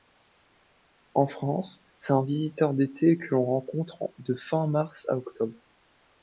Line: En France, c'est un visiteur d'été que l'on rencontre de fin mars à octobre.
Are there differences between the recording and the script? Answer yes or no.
no